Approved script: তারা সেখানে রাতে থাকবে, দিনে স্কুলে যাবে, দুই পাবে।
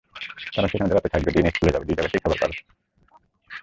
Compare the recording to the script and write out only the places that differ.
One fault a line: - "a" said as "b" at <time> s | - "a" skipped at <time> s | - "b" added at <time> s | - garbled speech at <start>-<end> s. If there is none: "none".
- "জায়গাতেই খাবার" added at 2.0 s